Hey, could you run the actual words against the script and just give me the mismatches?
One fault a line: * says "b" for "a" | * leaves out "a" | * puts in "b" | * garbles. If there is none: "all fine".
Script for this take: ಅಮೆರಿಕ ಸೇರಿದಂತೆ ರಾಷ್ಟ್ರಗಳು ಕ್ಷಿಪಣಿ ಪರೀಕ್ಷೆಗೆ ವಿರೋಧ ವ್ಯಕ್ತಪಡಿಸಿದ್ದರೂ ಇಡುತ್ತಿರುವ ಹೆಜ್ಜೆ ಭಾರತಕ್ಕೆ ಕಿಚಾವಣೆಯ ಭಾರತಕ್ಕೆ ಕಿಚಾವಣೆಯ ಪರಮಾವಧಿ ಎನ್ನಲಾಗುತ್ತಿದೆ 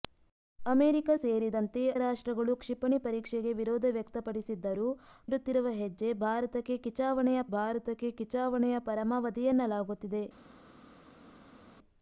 all fine